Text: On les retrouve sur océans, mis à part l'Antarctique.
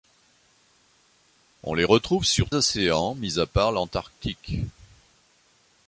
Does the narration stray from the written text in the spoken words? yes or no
no